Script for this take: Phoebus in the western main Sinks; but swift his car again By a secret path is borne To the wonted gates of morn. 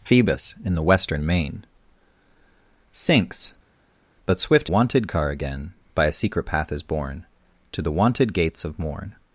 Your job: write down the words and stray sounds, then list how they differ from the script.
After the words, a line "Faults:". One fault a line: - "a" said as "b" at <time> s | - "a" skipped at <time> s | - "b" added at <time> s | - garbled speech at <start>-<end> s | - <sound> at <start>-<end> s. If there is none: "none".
Phoebus in the western main Sinks; but swift wonted car again By a secret path is borne To the wonted gates of morn.
Faults:
- "his" said as "wonted" at 4.7 s